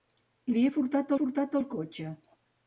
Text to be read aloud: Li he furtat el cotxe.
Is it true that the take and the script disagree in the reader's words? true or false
true